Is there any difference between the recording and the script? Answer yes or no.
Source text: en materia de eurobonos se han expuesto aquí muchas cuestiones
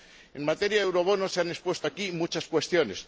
no